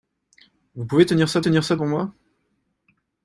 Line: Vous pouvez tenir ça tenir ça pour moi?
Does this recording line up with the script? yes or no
yes